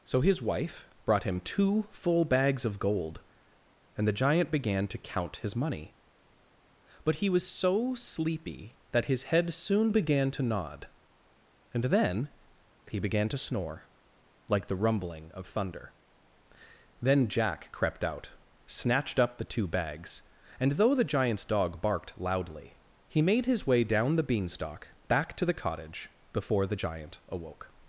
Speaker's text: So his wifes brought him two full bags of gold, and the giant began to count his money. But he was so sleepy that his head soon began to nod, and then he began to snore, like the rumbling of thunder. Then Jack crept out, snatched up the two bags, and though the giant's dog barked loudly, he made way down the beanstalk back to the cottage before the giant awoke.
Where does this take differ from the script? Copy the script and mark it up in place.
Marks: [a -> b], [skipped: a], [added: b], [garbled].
So his [wifes -> wife] brought him two full bags of gold, and the giant began to count his money. But he was so sleepy that his head soon began to nod, and then he began to snore, like the rumbling of thunder. Then Jack crept out, snatched up the two bags, and though the giant's dog barked loudly, he made [added: his] way down the beanstalk back to the cottage before the giant awoke.